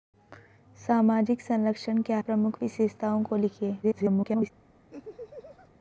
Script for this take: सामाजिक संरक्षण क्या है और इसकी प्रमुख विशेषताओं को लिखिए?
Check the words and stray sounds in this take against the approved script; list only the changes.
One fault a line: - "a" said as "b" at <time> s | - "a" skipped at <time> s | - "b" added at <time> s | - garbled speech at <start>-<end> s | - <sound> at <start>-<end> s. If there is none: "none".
- "है और इसकी" skipped at 2.2 s
- garbled speech at 3.8-4.5 s
- laugh at 4.9-5.7 s